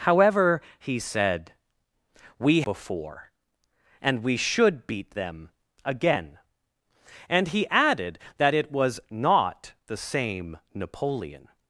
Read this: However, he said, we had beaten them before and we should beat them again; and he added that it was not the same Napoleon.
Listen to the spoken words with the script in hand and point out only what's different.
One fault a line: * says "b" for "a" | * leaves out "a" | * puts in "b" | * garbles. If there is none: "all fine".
* leaves out "had beaten them"